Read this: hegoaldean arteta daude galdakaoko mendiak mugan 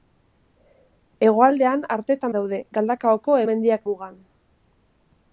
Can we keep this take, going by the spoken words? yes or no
yes